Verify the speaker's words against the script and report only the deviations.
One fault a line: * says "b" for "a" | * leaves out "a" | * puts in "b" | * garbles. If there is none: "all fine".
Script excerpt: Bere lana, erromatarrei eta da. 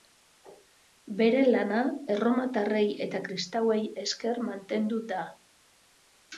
* puts in "kristauei esker mantendu"